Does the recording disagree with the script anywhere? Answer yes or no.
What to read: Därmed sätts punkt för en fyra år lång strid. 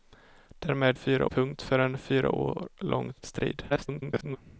yes